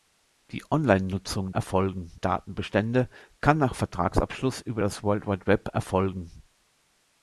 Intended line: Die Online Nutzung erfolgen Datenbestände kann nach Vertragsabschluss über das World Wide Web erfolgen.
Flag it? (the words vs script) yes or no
no